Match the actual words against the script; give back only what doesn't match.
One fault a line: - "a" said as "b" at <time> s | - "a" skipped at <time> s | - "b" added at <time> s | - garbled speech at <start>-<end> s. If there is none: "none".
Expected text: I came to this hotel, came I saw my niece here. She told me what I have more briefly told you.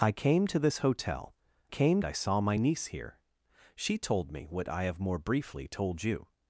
none